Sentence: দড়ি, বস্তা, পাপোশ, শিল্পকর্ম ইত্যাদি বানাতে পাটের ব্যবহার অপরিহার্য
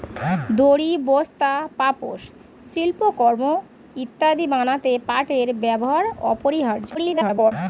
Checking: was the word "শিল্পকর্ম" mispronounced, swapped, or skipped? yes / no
no